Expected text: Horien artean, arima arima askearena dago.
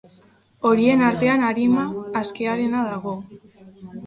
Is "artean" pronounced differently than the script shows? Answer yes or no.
no